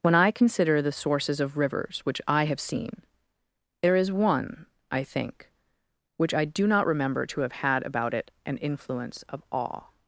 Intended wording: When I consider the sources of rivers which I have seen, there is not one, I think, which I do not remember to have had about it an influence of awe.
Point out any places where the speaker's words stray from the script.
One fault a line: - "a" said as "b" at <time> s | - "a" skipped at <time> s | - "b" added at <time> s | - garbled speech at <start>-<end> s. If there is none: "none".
- "not" skipped at 4.1 s